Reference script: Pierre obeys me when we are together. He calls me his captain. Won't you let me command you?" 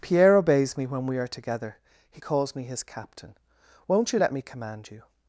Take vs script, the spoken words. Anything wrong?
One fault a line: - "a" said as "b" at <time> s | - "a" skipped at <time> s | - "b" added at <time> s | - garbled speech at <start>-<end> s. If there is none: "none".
none